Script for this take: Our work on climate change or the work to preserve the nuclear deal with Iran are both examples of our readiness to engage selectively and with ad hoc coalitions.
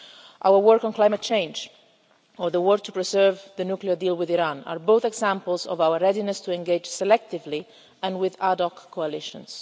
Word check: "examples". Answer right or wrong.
right